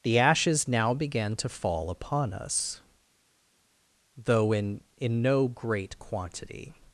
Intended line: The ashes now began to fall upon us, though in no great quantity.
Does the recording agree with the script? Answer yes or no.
no